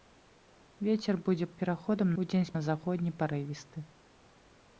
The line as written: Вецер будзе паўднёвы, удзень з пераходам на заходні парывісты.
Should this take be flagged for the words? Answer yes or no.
yes